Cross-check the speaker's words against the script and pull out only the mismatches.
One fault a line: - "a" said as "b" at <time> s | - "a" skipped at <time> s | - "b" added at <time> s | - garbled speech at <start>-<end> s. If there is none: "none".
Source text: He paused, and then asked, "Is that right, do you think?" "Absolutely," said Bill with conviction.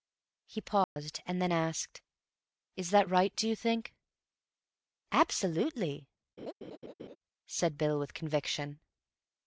none